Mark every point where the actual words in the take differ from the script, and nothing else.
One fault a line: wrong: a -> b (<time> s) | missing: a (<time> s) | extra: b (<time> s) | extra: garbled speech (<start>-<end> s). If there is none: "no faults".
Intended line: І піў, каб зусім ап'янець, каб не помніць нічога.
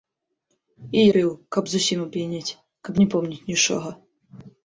no faults